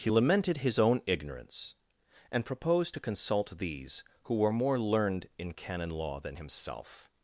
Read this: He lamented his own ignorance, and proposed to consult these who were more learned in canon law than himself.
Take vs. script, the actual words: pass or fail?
pass